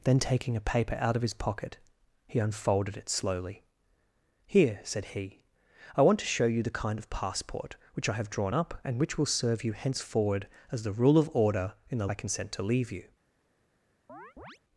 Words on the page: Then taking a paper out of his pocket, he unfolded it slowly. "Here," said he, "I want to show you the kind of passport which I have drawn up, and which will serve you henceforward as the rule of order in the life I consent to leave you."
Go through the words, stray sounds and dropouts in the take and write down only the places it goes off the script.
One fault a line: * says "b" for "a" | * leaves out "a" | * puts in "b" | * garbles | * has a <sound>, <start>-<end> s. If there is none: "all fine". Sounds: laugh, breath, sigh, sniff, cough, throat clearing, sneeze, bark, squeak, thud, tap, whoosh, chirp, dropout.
* leaves out "life"
* has a chirp, 14.1-14.6 s